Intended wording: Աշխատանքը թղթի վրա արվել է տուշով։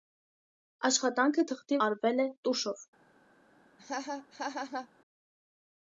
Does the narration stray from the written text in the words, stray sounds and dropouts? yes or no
yes